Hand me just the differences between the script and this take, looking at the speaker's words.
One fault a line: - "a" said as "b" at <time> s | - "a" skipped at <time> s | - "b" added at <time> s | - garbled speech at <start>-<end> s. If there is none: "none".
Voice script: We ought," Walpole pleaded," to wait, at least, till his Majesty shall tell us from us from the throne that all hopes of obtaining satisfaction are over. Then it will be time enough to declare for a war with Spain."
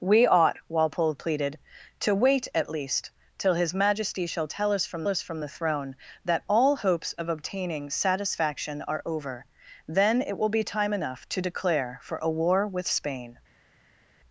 none